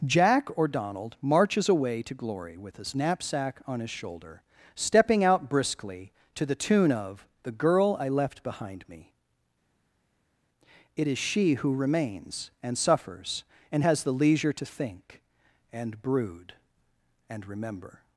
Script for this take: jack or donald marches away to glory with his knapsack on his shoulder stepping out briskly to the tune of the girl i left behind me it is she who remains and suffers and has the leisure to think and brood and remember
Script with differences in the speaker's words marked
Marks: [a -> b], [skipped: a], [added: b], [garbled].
jack or donald marches away to glory with his knapsack on his shoulder stepping out briskly to the tune of the girl i left behind me it is she who remains and suffers and has the leisure to think and brood and remember